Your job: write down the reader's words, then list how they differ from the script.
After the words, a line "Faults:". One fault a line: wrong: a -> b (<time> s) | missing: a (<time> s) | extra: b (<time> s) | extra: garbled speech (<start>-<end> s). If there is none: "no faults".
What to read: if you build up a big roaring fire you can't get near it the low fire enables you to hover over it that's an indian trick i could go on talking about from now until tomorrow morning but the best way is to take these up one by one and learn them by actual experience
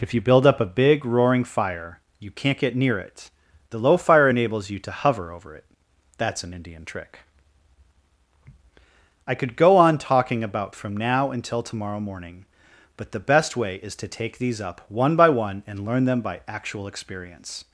if you build up a big roaring fire you can't get near it the low fire enables you to hover over it that's an indian trick i could go on talking about from now until tomorrow morning but the best way is to take these up one by one and learn them by actual experience
Faults:
no faults